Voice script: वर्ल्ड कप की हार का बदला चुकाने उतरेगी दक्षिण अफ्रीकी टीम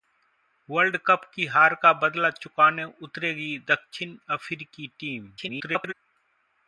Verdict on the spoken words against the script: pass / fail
fail